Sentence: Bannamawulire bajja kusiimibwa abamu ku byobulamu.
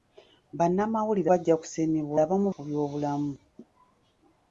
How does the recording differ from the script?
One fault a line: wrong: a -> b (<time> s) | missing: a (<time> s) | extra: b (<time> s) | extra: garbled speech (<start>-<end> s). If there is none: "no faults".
no faults